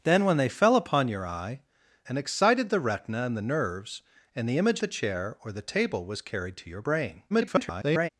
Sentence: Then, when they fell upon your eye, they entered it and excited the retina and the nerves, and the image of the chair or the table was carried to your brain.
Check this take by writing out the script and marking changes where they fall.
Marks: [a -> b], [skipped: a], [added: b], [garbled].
Then, when they fell upon your eye, [skipped: they entered it] and excited the retina and the nerves, and the image [skipped: of] the chair or the table was carried to your brain. [garbled]